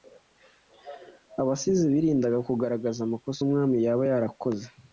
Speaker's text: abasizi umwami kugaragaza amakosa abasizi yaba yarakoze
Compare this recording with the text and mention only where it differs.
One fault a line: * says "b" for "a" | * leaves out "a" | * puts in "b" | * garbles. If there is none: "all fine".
* says "birindaga" for "umwami"
* says "umwami" for "abasizi"